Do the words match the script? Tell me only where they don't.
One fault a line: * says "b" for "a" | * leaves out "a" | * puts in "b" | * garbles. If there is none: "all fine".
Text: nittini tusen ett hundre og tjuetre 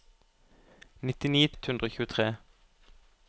* leaves out "tusen"